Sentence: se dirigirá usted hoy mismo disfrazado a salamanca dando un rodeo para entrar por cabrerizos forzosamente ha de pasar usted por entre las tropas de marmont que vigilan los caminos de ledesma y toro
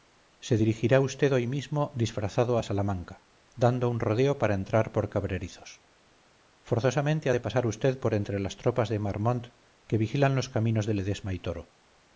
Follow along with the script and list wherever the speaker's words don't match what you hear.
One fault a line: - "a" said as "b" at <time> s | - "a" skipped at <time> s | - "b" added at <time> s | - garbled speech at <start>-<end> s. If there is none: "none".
none